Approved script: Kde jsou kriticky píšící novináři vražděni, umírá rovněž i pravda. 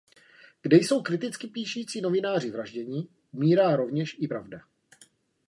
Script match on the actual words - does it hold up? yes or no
yes